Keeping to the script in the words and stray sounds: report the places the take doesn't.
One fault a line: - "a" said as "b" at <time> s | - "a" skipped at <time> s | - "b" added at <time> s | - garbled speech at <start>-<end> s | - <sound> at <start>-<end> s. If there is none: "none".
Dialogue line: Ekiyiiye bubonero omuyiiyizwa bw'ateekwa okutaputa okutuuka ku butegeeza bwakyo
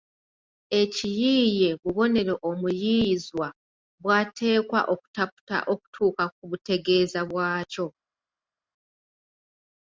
none